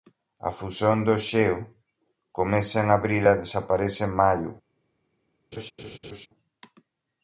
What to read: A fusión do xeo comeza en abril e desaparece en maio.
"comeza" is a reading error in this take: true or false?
false